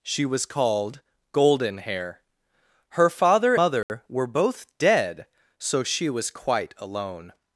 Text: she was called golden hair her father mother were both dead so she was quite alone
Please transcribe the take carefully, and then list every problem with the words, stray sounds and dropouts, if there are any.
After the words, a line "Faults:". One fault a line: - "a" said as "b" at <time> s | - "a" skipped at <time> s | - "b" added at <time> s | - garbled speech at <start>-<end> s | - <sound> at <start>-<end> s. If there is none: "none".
she was called golden hair her father mother were both dead so she was quite alone
Faults:
- dropout at 3.8-3.9 s